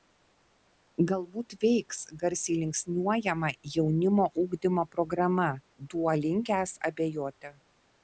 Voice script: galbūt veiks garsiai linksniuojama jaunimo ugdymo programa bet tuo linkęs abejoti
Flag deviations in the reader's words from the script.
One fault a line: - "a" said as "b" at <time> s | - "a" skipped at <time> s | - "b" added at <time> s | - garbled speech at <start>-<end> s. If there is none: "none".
- "bet" skipped at 5.5 s